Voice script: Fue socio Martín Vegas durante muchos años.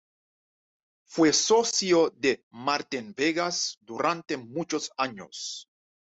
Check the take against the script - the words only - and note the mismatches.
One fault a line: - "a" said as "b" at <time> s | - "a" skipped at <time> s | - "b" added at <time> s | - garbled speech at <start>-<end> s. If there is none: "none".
- "de" added at 2.1 s